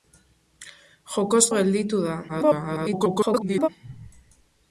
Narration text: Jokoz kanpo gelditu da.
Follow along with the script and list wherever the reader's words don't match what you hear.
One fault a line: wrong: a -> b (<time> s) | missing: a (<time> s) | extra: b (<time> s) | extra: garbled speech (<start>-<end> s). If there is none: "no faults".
missing: kanpo (1.4 s)
extra: garbled speech (2.3-3.7 s)